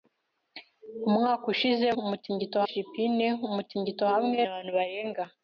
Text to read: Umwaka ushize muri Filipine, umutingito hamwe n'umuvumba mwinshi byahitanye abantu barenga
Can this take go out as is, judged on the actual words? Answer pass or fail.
fail